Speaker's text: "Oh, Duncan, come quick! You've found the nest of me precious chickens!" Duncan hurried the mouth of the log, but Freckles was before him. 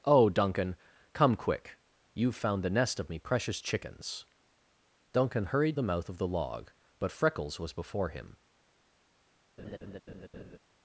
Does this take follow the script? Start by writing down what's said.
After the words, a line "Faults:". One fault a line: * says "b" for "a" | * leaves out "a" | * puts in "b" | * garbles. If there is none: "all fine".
"Oh, Duncan, come quick! You've found the nest of me precious chickens!" Duncan hurried the mouth of the log, but Freckles was before him.
Faults:
all fine